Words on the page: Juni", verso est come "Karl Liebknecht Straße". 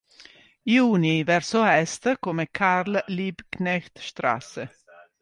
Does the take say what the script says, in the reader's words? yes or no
yes